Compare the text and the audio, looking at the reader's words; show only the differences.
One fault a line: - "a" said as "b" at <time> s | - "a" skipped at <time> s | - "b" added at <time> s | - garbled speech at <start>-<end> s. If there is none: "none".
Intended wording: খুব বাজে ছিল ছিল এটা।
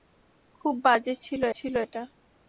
none